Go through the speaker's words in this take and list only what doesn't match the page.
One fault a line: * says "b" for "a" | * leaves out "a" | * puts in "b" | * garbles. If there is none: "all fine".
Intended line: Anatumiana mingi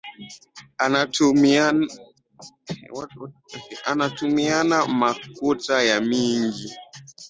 * puts in "makuta ya"